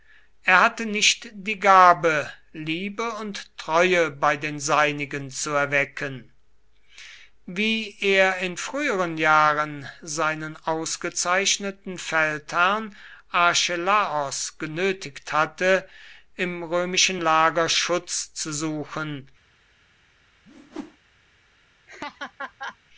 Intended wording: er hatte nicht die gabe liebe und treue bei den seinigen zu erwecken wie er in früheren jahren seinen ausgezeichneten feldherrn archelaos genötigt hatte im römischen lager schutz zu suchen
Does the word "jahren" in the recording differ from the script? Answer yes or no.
no